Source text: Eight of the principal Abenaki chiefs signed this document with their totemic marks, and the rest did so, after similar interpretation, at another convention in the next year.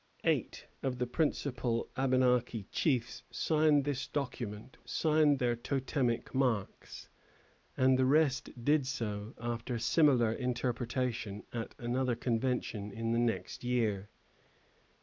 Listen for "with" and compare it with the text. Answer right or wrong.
wrong